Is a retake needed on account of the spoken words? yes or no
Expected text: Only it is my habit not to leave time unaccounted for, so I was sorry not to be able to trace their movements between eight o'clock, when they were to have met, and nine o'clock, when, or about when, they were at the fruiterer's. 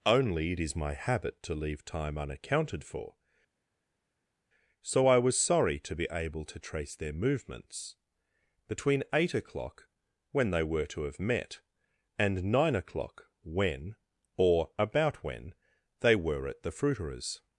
yes